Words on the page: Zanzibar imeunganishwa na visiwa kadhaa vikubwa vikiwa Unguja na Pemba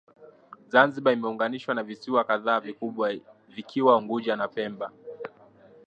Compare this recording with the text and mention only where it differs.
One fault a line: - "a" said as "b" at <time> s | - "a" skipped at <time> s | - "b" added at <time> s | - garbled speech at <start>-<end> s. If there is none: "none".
none